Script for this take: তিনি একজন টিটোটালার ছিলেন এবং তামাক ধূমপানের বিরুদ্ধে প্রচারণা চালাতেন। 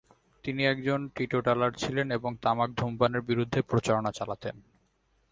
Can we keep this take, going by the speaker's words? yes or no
yes